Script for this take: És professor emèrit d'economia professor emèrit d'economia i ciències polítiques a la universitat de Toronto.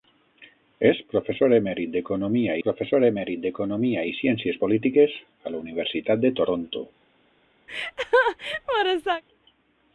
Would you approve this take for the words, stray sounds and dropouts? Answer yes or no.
no